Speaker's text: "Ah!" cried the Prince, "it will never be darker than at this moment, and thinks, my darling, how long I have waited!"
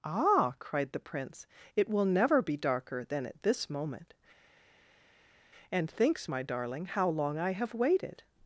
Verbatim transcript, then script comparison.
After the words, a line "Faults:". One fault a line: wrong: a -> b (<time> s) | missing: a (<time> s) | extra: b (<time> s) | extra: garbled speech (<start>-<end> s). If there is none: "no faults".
"Ah!" cried the Prince, "it will never be darker than at this moment, and thinks, my darling, how long I have waited!"
Faults:
no faults